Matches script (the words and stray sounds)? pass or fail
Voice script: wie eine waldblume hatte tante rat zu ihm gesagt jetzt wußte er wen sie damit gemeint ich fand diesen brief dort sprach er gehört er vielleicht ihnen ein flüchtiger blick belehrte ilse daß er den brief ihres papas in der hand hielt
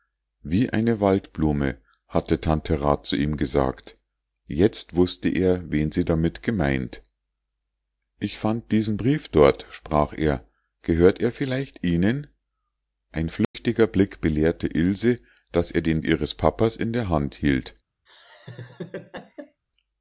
fail